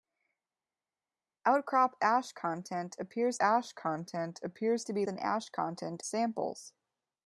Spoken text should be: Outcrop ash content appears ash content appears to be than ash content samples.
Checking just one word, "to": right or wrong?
right